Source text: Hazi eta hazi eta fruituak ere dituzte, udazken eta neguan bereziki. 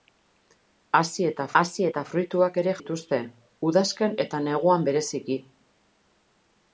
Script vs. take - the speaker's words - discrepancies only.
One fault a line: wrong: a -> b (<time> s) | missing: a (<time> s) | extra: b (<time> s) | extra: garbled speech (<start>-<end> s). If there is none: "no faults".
no faults